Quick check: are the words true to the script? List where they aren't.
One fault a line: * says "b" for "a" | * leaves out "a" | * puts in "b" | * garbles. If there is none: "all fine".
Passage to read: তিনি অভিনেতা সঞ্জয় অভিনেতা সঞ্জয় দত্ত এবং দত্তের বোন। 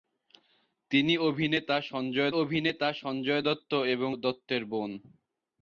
all fine